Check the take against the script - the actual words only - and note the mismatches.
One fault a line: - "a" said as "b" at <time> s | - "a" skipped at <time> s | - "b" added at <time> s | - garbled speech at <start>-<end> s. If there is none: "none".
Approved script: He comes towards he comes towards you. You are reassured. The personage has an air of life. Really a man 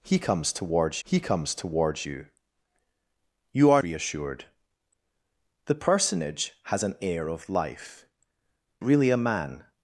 none